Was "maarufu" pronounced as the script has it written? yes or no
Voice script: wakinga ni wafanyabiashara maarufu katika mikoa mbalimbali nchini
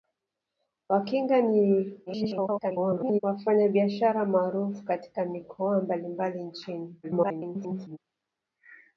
yes